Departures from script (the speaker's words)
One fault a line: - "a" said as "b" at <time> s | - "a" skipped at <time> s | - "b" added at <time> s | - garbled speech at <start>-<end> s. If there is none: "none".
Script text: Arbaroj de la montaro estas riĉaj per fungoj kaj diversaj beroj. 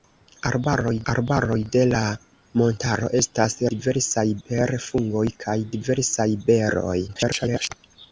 - "arbaroj" added at 1.1 s
- "riĉaj" said as "diversaj" at 3.7 s
- garbled speech at 7.1-7.7 s